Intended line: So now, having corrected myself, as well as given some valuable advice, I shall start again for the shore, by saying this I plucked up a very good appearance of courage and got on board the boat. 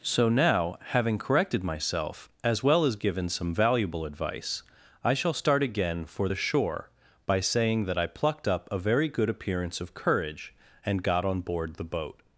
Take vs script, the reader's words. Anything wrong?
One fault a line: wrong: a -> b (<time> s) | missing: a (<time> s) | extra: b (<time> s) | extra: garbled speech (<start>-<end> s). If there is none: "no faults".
wrong: this -> that (7.9 s)